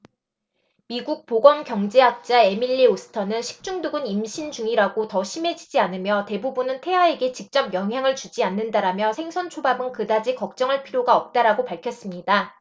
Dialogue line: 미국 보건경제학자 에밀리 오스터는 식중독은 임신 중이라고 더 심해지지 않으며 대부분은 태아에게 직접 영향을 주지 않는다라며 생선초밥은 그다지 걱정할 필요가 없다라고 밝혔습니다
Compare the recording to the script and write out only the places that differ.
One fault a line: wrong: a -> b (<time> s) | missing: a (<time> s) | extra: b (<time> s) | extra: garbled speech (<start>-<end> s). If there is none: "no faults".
no faults